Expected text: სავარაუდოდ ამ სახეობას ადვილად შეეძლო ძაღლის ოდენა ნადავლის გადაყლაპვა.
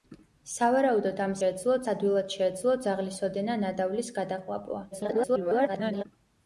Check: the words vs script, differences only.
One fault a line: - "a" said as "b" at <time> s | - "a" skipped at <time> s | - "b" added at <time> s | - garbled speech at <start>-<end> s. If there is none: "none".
- "სახეობას" said as "შეეძლო" at 1.4 s
- garbled speech at 4.9-6.0 s